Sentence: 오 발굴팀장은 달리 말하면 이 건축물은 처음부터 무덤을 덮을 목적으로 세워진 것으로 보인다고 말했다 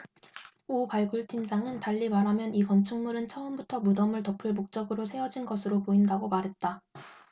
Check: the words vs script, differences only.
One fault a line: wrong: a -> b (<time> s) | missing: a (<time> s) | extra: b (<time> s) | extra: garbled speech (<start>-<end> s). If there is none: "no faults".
no faults